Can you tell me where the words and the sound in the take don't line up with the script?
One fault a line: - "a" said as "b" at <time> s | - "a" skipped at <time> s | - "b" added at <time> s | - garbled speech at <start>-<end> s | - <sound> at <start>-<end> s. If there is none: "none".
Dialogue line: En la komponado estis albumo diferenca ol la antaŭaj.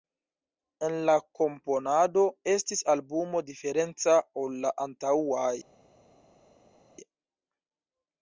none